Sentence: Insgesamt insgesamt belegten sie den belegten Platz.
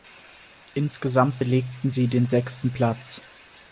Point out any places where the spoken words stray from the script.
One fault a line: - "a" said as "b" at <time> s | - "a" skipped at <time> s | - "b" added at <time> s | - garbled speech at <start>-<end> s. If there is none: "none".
- "insgesamt" skipped at 1.4 s
- "belegten" said as "sechsten" at 2.3 s